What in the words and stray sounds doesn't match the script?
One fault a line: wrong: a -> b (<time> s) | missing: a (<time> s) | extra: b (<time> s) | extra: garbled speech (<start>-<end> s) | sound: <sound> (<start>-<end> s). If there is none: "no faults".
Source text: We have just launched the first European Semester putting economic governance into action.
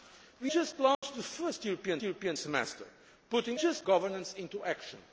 missing: have (0.5 s)
sound: dropout (0.9-1.0 s)
extra: European (2.0 s)
wrong: economic -> just (3.6 s)